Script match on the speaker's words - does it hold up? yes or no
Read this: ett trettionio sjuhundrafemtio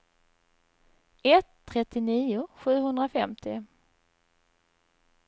yes